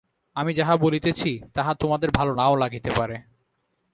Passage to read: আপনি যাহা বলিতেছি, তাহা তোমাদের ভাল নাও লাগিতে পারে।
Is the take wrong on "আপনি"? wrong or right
wrong